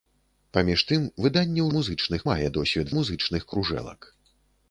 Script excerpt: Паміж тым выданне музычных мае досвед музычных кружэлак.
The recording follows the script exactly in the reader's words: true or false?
true